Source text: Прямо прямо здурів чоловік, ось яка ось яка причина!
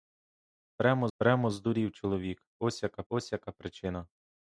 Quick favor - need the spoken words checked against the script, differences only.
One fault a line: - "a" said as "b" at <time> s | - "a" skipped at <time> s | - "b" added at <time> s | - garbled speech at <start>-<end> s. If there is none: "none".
none